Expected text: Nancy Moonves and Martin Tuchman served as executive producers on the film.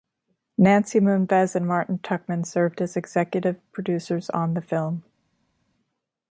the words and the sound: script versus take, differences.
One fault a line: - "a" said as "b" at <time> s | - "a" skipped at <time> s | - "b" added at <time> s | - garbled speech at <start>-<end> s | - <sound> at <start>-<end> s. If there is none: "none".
none